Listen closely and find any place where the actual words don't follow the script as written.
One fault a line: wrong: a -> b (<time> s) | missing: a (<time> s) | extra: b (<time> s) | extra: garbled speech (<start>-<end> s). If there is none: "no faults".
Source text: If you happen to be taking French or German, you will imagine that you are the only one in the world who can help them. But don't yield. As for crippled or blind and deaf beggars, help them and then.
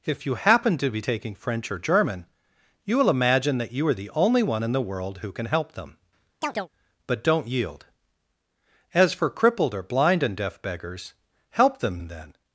no faults